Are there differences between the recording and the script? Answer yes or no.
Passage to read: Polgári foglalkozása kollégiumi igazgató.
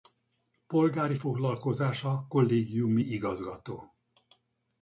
no